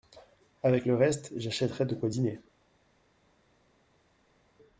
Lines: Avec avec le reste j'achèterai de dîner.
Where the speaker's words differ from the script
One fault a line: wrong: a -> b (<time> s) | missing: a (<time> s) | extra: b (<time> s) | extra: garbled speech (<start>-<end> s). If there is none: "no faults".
missing: avec (0.9 s)
extra: quoi (1.9 s)